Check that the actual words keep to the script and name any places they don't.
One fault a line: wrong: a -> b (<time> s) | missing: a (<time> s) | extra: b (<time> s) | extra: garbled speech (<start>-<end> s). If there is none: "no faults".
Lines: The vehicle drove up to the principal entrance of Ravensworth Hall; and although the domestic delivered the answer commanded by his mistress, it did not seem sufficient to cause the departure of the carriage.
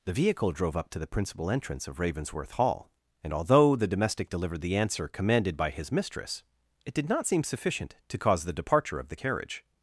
no faults